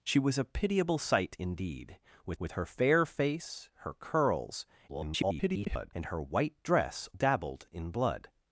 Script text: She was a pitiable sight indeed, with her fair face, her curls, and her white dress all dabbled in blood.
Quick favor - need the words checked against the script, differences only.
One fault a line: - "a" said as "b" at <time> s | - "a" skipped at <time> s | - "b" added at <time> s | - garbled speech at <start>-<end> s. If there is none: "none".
- "with" added at 2.4 s
- garbled speech at 4.9-5.9 s
- "all" skipped at 7.1 s